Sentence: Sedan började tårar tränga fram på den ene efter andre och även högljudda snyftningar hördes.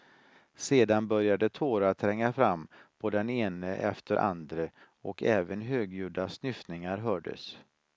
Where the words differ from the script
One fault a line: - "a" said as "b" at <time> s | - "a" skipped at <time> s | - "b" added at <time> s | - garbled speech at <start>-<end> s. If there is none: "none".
none